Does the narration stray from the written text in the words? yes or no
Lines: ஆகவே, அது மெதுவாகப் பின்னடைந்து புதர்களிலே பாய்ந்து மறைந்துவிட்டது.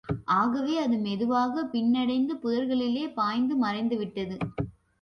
no